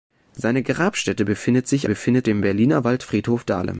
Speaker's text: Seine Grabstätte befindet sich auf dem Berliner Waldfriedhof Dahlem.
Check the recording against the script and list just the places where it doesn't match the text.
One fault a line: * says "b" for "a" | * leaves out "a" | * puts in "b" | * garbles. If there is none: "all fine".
* says "befindet" for "auf"